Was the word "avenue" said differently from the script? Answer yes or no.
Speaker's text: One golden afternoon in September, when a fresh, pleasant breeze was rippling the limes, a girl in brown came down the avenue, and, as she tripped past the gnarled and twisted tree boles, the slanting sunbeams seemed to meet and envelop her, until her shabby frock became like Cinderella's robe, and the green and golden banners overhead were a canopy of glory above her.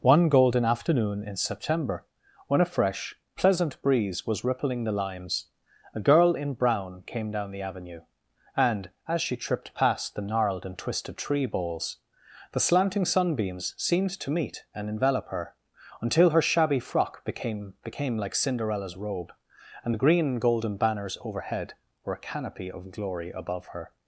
no